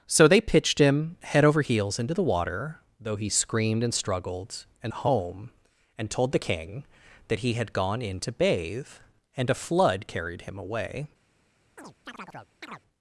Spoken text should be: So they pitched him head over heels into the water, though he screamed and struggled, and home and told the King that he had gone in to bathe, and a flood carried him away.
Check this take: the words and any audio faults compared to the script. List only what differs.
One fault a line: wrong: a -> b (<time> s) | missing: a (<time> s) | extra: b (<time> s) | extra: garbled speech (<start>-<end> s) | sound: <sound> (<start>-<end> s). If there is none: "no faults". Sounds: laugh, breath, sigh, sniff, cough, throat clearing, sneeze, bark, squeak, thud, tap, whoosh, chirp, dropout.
sound: chirp (11.8-12.8 s)